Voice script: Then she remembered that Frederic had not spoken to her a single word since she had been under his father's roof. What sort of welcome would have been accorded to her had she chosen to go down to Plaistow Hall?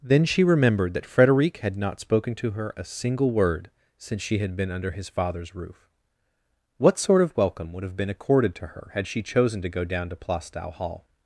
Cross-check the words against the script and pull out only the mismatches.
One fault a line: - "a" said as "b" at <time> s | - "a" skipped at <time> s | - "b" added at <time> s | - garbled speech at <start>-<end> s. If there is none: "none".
none